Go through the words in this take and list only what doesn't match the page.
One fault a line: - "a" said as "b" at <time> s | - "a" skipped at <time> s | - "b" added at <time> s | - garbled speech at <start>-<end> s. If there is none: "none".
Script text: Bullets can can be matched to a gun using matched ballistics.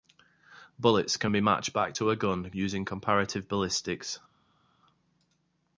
- "can" skipped at 1.3 s
- "back" added at 1.7 s
- "matched" said as "comparative" at 2.8 s